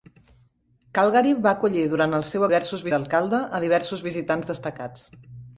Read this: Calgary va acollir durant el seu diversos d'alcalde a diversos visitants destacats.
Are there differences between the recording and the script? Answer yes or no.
no